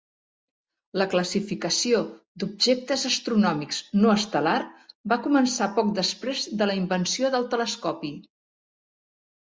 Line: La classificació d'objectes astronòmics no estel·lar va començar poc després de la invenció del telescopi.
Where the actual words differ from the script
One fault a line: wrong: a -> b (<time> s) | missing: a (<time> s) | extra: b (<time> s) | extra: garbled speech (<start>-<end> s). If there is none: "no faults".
no faults